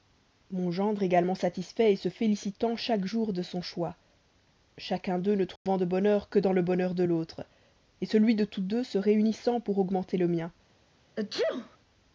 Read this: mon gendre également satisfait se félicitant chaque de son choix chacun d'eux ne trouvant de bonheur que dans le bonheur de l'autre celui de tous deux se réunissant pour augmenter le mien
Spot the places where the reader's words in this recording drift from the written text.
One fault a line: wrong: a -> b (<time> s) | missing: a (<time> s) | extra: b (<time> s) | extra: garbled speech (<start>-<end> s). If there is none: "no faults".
extra: jour (3.0 s)